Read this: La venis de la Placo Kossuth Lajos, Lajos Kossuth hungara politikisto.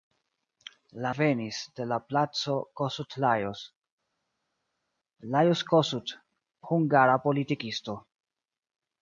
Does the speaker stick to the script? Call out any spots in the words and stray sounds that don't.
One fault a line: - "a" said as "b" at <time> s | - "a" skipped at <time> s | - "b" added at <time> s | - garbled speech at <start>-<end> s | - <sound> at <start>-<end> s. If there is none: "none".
none